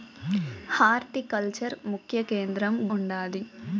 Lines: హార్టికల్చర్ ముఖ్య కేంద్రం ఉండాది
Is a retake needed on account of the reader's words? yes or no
no